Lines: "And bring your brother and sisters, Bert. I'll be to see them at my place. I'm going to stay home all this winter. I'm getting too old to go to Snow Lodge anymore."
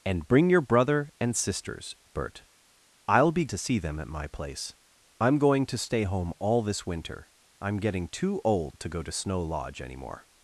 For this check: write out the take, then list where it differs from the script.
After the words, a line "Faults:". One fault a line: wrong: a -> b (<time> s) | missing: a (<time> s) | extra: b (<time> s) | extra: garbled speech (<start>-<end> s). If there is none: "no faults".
"And bring your brother and sisters, Bert. I'll be to see them at my place. I'm going to stay home all this winter. I'm getting too old to go to Snow Lodge anymore."
Faults:
no faults